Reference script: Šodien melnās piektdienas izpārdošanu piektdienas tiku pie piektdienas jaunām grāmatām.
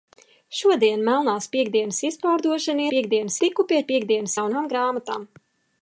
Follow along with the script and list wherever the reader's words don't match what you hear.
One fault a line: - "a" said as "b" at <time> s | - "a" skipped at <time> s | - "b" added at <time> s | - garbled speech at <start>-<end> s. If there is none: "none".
none